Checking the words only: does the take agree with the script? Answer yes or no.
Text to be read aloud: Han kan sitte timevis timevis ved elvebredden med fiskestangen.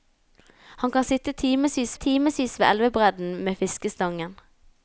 yes